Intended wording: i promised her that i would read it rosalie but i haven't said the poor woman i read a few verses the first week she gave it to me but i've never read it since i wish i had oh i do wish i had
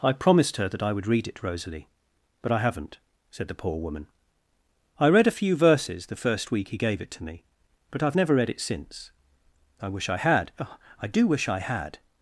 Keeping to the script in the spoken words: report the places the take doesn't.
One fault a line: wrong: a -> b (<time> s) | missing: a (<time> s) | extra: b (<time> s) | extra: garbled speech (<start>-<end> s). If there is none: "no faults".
wrong: she -> he (6.7 s)